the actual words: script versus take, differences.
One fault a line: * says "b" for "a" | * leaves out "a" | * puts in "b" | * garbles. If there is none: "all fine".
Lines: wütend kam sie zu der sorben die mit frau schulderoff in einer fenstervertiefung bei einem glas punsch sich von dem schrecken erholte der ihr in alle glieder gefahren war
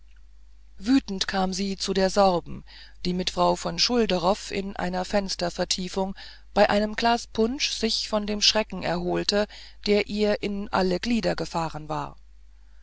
* puts in "von"